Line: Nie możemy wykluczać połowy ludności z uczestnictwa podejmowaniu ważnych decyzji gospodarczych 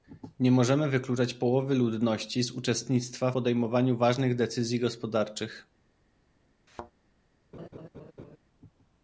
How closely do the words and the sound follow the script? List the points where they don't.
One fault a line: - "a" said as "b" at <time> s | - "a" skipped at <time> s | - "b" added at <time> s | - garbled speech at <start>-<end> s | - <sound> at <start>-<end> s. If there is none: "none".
- thud at 6.7-6.9 s
- laugh at 7.5-8.4 s